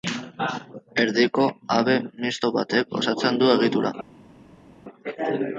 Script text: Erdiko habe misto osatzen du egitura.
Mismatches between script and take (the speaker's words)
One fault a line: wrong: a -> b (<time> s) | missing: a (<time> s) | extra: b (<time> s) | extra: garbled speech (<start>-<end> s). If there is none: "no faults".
extra: batek (2.6 s)